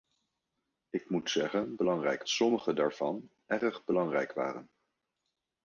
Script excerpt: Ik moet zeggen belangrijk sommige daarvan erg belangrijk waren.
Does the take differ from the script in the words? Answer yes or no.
no